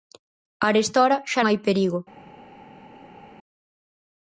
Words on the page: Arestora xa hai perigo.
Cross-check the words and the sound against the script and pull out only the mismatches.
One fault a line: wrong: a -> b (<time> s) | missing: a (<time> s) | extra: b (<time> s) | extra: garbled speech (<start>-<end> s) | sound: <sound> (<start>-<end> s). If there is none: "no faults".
no faults